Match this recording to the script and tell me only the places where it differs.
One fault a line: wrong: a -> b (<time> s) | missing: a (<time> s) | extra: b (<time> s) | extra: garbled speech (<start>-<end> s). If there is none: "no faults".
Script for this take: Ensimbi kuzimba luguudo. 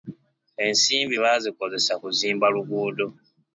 extra: baazikozesa (1.2 s)